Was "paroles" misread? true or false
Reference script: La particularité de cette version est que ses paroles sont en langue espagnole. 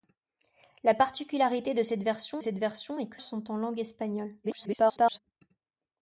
true